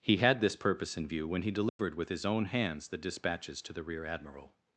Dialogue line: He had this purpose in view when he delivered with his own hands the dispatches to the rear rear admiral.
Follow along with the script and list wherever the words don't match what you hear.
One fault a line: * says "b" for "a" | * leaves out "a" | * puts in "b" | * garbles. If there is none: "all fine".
* leaves out "rear"